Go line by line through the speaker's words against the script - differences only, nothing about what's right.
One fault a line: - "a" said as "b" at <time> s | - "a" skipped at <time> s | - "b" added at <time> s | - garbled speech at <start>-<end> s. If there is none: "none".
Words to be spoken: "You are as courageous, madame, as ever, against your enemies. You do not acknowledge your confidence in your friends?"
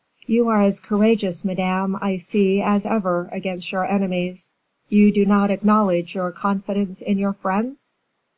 - "I see" added at 2.0 s